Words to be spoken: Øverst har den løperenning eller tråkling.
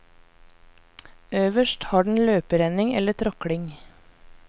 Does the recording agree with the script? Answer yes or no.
yes